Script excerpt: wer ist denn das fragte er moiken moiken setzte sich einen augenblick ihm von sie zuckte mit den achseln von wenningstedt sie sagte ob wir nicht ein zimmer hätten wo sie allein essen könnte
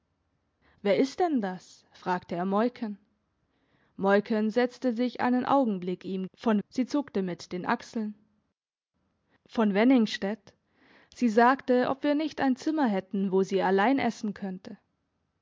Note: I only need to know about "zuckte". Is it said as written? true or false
true